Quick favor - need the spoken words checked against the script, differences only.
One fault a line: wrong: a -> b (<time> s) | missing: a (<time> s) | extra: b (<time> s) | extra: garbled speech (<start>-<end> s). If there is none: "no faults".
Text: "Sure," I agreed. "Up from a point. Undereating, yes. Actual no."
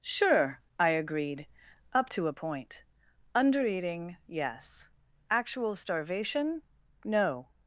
wrong: from -> to (2.1 s)
extra: starvation (5.7 s)